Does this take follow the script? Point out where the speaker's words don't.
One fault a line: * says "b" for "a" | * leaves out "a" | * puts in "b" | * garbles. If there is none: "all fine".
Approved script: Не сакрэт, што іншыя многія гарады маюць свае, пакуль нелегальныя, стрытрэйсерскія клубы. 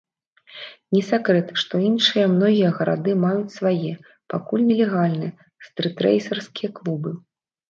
all fine